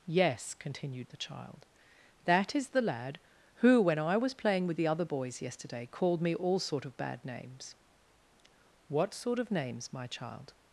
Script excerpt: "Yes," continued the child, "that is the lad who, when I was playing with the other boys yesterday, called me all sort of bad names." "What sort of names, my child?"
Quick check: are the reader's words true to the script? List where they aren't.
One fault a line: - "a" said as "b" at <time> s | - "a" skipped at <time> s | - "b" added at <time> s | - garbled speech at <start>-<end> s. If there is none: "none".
none